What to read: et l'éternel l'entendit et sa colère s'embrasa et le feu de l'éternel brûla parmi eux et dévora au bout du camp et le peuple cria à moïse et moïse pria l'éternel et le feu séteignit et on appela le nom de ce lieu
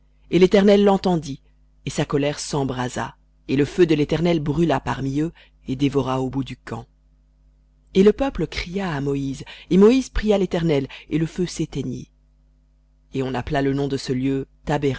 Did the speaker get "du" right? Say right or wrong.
right